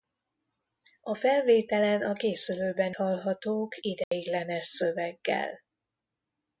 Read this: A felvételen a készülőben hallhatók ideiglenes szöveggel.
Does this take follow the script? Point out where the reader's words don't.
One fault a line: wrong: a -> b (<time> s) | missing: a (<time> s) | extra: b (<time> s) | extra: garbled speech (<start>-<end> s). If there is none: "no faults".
no faults